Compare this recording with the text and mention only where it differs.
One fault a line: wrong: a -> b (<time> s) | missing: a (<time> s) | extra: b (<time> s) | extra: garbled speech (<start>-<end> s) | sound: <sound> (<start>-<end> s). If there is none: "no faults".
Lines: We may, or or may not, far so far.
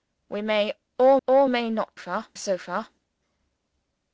no faults